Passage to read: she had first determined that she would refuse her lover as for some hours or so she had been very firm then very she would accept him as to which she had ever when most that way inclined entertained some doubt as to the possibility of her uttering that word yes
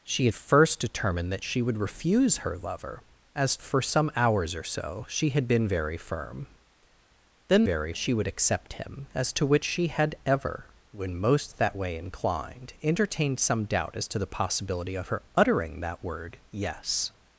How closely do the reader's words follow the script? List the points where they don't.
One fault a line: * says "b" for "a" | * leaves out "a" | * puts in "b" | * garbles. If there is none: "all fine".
all fine